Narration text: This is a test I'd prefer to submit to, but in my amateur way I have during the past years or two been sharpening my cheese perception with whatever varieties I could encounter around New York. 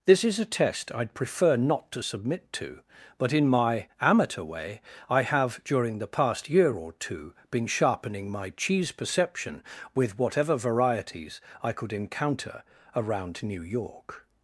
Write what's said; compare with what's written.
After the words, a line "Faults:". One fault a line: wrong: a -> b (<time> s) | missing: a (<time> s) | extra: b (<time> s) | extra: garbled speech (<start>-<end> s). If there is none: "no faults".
This is a test I'd prefer not to submit to, but in my amateur way I have during the past year or two been sharpening my cheese perception with whatever varieties I could encounter around New York.
Faults:
extra: not (1.6 s)
wrong: years -> year (6.5 s)